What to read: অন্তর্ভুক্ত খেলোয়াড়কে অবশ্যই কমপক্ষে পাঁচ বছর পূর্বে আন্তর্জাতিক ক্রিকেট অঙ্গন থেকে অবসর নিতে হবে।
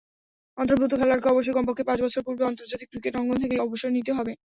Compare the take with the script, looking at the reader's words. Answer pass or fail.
pass